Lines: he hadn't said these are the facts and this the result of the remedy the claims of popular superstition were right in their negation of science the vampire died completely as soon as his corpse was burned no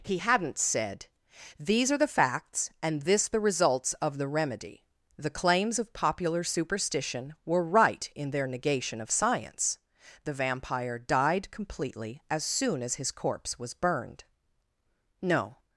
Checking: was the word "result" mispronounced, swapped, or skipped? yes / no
yes